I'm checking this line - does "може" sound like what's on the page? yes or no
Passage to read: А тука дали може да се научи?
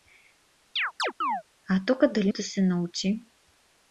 no